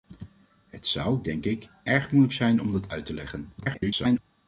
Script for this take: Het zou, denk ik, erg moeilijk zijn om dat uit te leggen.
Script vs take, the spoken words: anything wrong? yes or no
yes